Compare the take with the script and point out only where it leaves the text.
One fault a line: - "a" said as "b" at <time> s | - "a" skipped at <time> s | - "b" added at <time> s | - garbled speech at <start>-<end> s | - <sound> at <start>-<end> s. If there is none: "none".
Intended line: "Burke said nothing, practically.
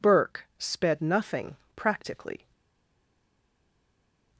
- "said" said as "sped" at 0.6 s